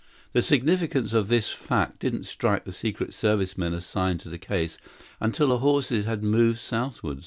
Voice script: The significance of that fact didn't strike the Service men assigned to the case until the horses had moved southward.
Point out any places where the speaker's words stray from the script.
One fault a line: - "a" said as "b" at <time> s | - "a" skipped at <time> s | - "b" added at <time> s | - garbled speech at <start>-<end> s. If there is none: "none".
- "that" said as "this" at 1.3 s
- "Secret" added at 2.7 s